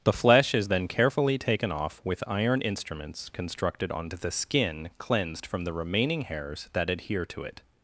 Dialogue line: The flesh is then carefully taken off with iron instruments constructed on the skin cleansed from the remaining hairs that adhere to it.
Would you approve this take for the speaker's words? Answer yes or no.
yes